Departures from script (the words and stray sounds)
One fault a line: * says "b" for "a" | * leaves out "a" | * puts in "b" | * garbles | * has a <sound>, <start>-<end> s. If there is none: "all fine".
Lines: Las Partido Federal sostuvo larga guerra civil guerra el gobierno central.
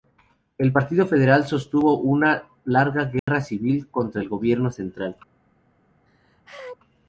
* says "El" for "Las"
* puts in "una"
* has a dropout, 3.2-3.3 s
* says "contra" for "guerra"
* has a sneeze, 6.1-6.8 s